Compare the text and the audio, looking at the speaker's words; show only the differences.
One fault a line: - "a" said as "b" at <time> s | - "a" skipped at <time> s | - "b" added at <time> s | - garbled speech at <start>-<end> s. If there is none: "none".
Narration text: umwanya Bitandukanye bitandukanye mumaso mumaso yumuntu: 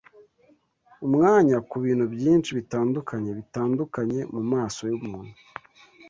- "Kubintu byinshi" added at 1.7 s
- "mumaso" skipped at 4.8 s